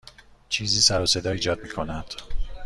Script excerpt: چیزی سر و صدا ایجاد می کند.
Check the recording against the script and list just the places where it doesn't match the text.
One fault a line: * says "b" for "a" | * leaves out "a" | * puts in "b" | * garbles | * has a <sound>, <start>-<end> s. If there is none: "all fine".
all fine